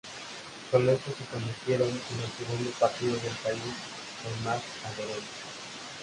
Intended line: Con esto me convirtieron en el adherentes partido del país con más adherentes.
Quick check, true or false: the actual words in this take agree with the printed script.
false